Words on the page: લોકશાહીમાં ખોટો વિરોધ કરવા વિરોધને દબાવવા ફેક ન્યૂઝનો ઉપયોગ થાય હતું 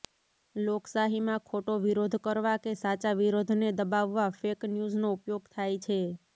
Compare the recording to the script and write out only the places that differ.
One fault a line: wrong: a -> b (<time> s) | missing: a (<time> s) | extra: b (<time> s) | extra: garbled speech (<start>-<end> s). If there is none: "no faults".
extra: કે સાચા (2.6 s)
wrong: હતું -> છે (5.8 s)